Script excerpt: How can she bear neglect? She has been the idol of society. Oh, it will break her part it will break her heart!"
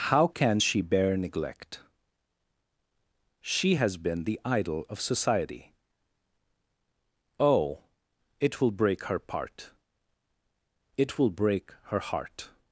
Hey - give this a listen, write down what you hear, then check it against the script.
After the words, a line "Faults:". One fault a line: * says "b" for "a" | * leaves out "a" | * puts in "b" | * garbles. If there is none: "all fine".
How can she bear neglect? She has been the idol of society. Oh, it will break her part it will break her heart!"
Faults:
all fine